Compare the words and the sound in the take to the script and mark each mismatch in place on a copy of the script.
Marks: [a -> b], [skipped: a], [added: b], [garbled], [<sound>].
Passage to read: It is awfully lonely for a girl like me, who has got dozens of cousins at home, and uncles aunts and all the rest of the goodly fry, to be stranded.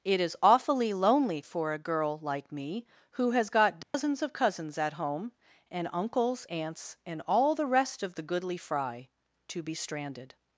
It is awfully lonely for a girl like me, who has got dozens [dropout] of cousins at home, and uncles aunts and all the rest of the goodly fry, to be stranded.